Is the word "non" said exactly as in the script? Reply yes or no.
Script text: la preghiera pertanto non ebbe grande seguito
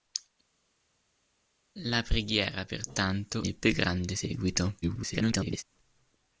no